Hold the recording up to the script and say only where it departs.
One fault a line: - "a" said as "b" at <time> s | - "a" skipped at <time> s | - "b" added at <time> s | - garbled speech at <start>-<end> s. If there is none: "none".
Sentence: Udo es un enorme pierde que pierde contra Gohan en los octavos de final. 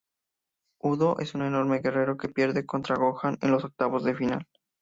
- "pierde" said as "guerrero" at 1.8 s